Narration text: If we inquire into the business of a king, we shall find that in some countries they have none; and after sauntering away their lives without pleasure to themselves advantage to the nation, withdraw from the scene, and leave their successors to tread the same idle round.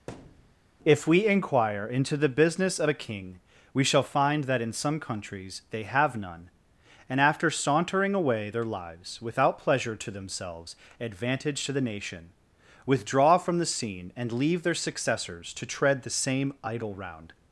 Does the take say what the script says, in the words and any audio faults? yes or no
no